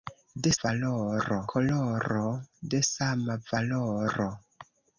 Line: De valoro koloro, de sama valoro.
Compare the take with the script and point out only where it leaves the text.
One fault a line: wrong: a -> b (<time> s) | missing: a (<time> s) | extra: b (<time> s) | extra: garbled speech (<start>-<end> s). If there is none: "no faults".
no faults